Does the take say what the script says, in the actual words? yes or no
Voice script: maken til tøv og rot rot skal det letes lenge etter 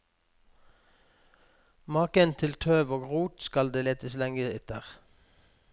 no